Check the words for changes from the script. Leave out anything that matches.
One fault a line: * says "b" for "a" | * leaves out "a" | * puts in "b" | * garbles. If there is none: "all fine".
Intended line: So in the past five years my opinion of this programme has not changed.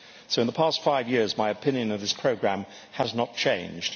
all fine